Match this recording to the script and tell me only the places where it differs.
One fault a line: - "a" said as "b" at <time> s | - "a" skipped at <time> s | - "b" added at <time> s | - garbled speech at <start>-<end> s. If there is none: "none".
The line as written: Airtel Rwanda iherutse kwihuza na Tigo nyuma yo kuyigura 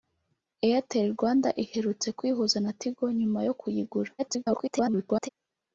- garbled speech at 4.2-5.3 s